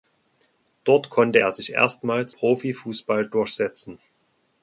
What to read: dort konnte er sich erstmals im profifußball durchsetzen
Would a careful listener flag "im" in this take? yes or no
yes